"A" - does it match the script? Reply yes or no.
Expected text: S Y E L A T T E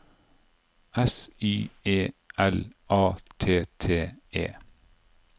yes